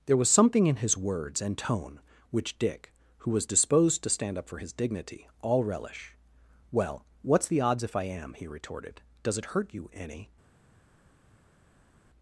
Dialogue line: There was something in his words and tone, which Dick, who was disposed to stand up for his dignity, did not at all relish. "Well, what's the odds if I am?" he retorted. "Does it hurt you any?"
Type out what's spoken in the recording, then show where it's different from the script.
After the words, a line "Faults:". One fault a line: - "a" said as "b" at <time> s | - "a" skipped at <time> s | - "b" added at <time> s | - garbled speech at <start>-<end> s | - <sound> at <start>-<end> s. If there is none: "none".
There was something in his words and tone, which Dick, who was disposed to stand up for his dignity, all relish. "Well, what's the odds if I am?" he retorted. "Does it hurt you any?"
Faults:
- "did not at" skipped at 5.3 s